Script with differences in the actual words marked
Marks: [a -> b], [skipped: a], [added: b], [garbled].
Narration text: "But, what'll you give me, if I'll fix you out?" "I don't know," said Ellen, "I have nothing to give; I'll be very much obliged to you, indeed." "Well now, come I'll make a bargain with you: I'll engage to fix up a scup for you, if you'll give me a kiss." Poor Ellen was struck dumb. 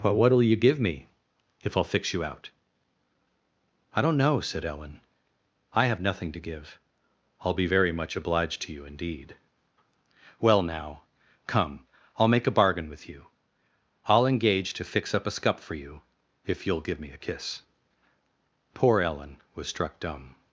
"But, what'll you give me, if I'll fix you out?" "I don't know," said Ellen, "I have nothing to give; I'll be very much obliged to you, indeed." "Well now, come I'll make a bargain with you: I'll engage to fix up a scup for you, if you'll give me a kiss." Poor Ellen was struck dumb.